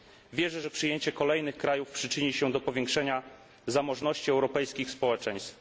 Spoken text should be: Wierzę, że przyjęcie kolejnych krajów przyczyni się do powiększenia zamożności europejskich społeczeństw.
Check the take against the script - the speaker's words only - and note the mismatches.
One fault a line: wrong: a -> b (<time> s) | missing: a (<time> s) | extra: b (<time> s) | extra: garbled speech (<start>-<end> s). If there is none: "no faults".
no faults